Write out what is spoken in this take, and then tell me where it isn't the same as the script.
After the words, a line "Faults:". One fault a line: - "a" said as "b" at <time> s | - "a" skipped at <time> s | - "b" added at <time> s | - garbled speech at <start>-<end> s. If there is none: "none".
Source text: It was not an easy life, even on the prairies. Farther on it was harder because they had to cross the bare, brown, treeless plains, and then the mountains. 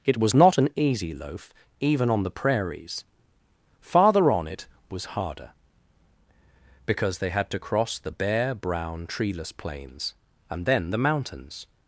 It was not an easy loaf, even on the prairies. Farther on it was harder because they had to cross the bare, brown, treeless plains, and then the mountains.
Faults:
- "life" said as "loaf" at 1.1 s